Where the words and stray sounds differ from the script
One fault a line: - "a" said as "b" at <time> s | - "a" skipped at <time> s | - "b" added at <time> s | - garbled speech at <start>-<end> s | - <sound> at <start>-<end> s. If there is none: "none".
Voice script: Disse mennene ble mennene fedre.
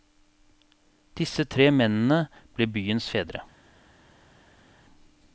- "tre" added at 1.4 s
- "mennene" said as "byens" at 2.7 s